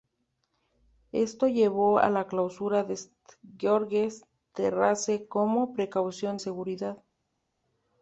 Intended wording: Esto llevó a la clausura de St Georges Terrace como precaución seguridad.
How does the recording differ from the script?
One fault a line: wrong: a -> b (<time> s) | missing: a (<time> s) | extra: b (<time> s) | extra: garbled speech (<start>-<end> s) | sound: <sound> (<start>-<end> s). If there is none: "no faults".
no faults